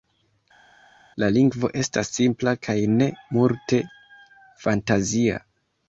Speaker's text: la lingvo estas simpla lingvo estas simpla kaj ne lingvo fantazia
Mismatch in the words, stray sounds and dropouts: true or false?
true